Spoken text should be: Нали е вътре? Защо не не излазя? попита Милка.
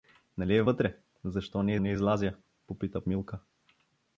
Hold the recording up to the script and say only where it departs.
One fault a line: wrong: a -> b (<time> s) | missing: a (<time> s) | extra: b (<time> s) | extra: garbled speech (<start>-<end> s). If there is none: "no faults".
no faults